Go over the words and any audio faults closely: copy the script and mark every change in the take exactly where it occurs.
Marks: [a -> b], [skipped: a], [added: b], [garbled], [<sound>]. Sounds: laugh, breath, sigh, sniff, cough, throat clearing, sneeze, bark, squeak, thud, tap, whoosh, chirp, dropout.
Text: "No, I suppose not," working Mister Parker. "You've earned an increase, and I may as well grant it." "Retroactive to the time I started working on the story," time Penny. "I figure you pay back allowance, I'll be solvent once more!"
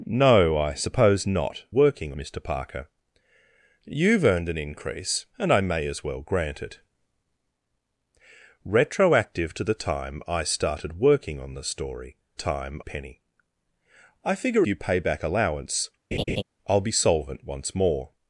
"No, I suppose not," working Mister Parker. "You've earned an increase, and I may as well grant it." "Retroactive to the time I started working on the story," time Penny. "I figure you pay back allowance, [laugh] I'll be solvent once more!"